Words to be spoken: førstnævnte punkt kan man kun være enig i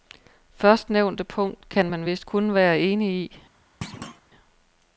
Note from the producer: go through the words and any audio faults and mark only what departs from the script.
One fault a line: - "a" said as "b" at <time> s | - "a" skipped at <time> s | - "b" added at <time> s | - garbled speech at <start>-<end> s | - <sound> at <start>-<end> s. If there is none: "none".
- "vist" added at 2.0 s
- thud at 3.8-4.2 s